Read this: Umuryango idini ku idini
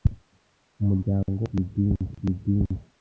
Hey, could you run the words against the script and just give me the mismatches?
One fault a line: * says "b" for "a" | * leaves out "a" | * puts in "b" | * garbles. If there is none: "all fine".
all fine